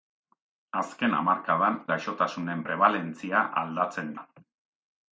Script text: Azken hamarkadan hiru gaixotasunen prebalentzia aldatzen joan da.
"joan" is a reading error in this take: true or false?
true